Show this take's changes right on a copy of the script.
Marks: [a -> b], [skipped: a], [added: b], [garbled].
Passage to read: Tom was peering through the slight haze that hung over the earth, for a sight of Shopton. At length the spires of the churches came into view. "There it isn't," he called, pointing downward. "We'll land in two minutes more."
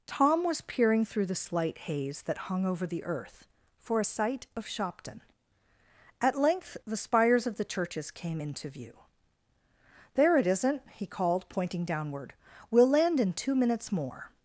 Tom was peering through the slight haze that hung over the earth, for a sight of Shopton. At length the spires of the churches came into view. "There it isn't," he called, pointing downward. "We'll land in two minutes more."